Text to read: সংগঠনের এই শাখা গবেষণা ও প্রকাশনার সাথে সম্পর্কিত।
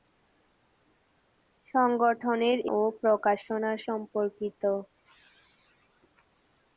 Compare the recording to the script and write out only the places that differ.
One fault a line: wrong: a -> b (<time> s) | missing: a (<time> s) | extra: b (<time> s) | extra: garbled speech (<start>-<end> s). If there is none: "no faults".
missing: এই শাখা গবেষণা (2.6 s)
missing: সাথে (3.8 s)